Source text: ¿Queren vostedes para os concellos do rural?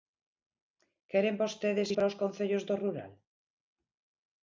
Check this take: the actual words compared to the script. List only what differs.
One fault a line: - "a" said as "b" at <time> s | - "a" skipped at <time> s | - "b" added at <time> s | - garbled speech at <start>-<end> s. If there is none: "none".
none